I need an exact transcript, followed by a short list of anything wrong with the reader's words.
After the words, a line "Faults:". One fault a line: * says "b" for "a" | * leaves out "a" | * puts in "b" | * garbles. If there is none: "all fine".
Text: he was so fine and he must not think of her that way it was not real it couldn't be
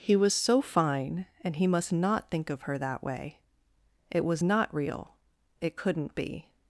he was so fine and he must not think of her that way it was not real it couldn't be
Faults:
all fine